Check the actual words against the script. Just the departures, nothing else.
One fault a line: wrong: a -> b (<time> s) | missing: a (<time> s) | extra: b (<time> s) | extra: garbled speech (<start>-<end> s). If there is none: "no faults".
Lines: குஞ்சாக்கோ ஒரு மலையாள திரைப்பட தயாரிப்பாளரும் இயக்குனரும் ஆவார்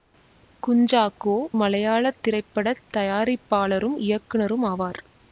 missing: ஒரு (1.3 s)